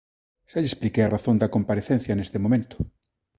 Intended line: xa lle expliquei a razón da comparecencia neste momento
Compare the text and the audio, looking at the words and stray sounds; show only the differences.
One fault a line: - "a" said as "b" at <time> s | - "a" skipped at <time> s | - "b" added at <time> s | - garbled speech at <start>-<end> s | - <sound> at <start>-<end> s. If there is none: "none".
none